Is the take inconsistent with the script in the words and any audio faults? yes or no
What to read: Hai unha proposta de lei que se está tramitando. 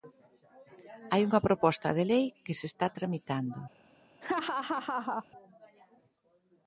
yes